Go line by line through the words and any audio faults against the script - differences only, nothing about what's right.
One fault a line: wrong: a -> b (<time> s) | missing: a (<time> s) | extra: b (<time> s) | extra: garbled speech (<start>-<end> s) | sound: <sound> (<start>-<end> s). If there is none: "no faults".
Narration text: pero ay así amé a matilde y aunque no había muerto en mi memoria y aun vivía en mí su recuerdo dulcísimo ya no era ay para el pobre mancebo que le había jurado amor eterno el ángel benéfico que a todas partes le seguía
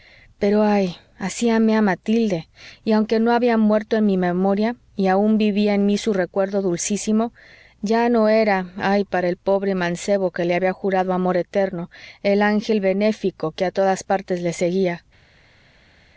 no faults